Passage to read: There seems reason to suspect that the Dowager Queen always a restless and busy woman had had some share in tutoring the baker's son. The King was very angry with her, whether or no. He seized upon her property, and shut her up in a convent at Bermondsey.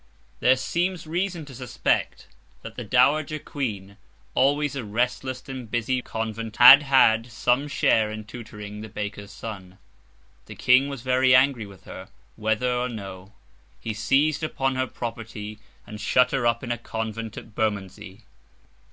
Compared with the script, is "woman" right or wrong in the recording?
wrong